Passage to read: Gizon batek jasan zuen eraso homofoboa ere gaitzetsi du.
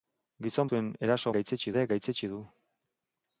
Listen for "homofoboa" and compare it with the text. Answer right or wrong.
wrong